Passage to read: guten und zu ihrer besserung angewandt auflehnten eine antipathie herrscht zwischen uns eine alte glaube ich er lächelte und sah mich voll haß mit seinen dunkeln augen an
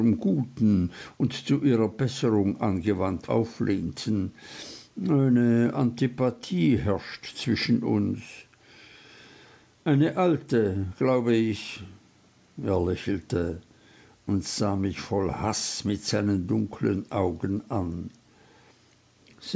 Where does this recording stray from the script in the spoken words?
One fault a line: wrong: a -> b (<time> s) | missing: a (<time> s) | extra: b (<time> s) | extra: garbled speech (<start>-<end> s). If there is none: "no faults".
no faults